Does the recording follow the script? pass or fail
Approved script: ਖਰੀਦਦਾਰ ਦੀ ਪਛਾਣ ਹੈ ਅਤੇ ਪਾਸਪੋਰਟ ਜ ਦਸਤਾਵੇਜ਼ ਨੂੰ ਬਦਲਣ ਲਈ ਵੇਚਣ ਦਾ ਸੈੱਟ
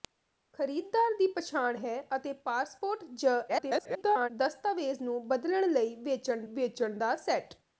fail